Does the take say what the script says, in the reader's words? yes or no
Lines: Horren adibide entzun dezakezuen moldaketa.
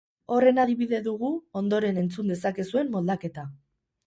no